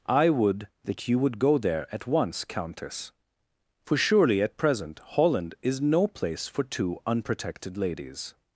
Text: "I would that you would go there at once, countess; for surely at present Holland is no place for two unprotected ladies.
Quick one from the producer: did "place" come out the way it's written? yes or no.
yes